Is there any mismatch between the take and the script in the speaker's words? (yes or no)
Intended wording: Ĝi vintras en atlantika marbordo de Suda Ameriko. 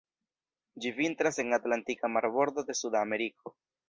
no